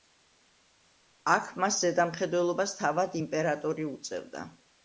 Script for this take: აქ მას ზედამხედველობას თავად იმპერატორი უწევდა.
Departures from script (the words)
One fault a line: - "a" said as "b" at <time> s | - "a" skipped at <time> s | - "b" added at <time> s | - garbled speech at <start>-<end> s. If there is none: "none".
none